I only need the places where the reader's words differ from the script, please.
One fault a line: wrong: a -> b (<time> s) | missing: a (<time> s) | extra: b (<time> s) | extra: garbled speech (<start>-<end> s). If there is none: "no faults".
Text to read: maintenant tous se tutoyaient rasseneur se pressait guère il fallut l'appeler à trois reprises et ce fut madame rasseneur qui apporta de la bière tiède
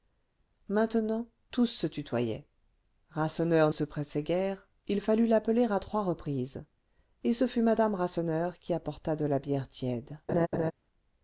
no faults